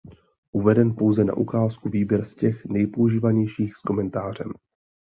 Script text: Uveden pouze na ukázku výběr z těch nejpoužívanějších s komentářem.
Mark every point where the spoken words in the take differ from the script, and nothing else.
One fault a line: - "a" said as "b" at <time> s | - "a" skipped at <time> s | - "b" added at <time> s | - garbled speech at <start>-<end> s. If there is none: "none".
none